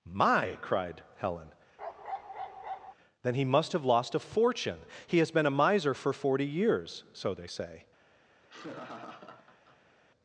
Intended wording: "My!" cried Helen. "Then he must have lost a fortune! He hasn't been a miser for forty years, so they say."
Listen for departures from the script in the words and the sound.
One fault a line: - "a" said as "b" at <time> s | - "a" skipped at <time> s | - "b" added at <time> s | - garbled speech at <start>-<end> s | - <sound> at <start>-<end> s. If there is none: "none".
- bark at 1.8-2.9 s
- "hasn't" said as "has" at 5.2 s
- laugh at 8.4-10.0 s